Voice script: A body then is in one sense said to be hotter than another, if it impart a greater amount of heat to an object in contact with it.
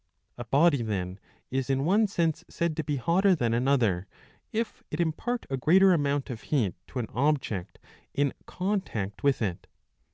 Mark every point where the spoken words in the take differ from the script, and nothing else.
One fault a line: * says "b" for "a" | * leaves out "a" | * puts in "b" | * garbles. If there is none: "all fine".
all fine